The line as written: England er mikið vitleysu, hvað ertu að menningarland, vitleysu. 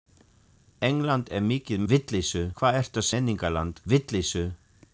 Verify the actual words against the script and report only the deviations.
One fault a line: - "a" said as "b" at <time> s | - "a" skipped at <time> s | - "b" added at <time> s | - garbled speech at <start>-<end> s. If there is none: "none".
none